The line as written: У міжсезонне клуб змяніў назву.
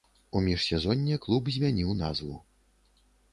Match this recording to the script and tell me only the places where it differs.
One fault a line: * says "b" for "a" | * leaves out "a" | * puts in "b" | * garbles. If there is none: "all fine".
all fine